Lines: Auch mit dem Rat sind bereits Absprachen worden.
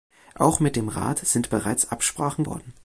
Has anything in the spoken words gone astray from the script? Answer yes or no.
no